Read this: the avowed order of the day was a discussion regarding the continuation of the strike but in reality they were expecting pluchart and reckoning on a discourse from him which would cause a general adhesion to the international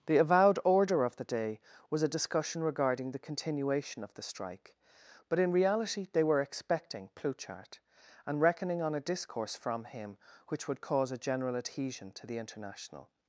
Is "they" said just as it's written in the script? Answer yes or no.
yes